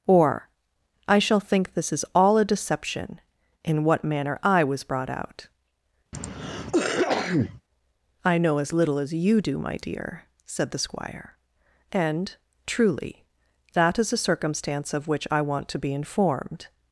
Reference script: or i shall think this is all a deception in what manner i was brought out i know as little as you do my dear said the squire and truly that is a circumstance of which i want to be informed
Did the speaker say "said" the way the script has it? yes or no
yes